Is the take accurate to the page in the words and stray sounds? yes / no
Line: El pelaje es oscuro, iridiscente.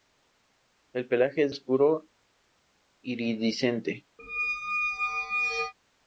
no